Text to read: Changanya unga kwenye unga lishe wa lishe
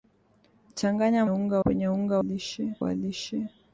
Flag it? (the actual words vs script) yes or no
no